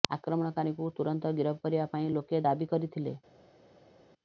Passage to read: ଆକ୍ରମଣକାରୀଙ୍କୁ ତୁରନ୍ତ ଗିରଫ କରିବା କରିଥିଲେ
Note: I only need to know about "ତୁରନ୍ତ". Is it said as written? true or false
true